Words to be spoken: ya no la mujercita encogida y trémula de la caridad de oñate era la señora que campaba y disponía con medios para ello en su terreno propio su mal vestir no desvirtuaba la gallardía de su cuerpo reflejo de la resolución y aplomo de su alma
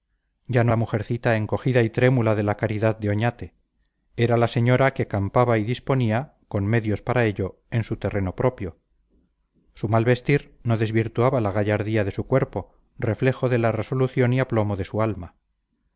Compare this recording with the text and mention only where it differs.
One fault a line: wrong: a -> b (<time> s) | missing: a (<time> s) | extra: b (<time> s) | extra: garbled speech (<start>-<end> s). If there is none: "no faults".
no faults